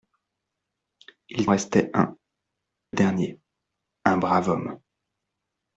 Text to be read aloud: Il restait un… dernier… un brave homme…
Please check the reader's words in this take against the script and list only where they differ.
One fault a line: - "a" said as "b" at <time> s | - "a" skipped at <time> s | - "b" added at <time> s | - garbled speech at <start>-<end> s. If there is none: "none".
none